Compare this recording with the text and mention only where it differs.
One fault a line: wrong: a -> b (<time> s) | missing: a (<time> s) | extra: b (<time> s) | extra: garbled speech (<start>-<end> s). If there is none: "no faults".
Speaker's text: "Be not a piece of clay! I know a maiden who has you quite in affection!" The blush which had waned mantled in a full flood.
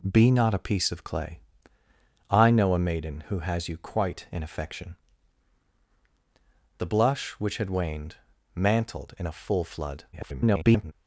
extra: garbled speech (10.1-10.9 s)